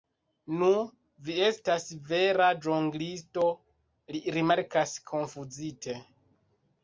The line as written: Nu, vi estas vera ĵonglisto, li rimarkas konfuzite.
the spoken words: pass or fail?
pass